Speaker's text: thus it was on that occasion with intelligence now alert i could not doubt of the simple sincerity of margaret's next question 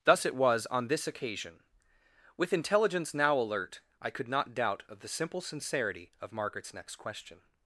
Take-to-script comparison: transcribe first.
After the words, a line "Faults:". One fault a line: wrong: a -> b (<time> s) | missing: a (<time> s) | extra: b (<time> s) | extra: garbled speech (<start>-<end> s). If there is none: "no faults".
thus it was on this occasion with intelligence now alert i could not doubt of the simple sincerity of margaret's next question
Faults:
wrong: that -> this (0.9 s)